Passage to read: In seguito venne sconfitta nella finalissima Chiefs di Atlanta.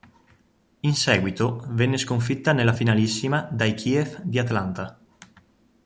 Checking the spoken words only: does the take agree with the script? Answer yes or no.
no